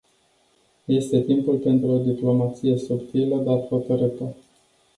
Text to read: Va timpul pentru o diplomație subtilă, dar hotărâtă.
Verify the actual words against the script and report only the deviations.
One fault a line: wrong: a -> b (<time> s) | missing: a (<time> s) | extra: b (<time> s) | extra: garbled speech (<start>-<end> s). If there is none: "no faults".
wrong: Va -> Este (0.9 s)